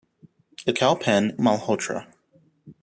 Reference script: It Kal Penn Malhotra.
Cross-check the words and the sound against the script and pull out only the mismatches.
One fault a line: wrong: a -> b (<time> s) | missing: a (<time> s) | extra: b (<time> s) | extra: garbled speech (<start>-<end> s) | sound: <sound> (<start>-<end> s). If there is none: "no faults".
no faults